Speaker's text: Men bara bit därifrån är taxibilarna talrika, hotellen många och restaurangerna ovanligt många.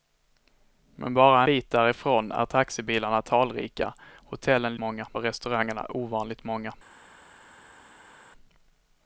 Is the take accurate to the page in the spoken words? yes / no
yes